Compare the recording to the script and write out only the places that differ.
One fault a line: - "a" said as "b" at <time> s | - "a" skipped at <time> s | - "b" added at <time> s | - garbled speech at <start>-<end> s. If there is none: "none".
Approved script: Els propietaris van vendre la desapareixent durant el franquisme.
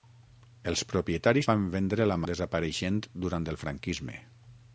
none